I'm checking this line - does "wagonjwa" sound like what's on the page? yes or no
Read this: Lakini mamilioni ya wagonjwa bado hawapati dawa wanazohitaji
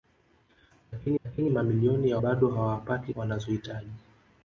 no